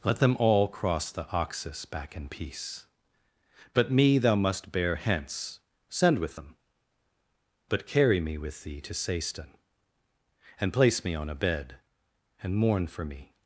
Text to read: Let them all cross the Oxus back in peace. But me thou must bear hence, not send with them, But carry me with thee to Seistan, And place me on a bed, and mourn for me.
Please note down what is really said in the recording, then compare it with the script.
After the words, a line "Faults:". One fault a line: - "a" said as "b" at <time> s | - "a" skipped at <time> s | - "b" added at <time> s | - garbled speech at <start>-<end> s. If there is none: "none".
Let them all cross the Oxus back in peace. But me thou must bear hence, send with them, But carry me with thee to Seistan, And place me on a bed, and mourn for me.
Faults:
- "not" skipped at 5.6 s